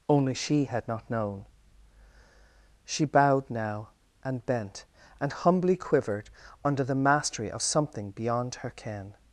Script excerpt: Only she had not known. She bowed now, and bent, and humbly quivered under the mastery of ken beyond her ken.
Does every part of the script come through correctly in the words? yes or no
no